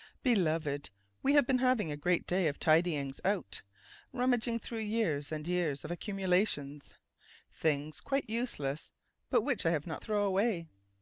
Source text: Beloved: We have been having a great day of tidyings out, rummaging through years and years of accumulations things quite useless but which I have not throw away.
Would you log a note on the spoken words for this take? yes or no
no